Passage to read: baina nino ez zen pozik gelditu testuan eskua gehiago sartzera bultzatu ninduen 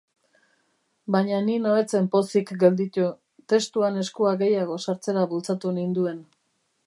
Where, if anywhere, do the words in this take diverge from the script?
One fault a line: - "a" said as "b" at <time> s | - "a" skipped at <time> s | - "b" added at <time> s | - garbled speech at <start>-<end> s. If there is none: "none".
none